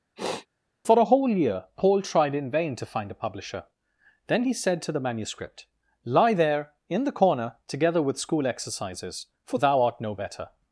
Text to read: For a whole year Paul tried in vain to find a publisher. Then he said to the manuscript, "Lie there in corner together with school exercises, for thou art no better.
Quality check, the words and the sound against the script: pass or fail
fail